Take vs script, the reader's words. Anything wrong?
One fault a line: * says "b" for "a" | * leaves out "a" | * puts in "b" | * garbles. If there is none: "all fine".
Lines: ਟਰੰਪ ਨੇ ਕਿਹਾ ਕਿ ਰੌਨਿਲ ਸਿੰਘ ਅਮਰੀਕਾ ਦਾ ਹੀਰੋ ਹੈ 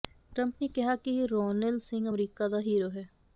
all fine